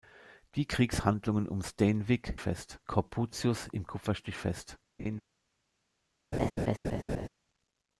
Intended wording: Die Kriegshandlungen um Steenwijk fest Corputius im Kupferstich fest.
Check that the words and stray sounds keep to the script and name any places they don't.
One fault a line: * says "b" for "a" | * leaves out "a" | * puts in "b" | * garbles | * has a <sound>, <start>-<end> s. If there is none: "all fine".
* has a laugh, 5.0-5.2 s
* has a laugh, 6.3-7.3 s